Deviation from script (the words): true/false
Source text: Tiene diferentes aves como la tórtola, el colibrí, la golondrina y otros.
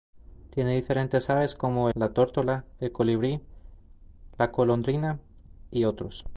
false